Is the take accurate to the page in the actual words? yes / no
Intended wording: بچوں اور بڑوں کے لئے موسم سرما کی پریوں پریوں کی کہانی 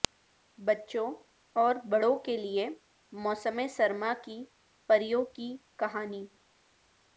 no